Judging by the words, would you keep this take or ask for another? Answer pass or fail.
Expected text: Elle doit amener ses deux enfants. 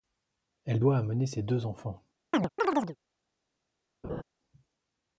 pass